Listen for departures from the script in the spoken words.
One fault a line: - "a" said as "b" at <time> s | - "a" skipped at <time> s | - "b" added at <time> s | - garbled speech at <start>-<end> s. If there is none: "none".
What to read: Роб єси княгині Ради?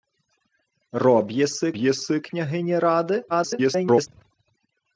- "єси" added at 1.8 s
- garbled speech at 3.3-4.1 s